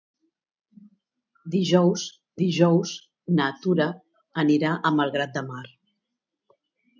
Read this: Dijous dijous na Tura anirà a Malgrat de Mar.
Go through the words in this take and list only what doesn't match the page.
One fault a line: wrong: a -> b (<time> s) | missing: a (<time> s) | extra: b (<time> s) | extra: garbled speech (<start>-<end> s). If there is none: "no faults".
no faults